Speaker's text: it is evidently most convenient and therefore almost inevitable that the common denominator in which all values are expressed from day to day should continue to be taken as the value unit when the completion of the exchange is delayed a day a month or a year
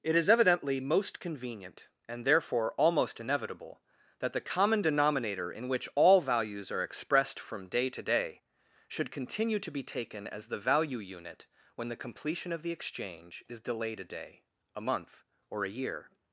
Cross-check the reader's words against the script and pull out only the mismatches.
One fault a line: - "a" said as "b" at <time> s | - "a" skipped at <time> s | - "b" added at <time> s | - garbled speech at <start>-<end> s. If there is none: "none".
none